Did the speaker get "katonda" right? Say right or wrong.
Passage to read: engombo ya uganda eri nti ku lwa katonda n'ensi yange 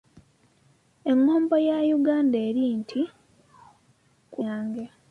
wrong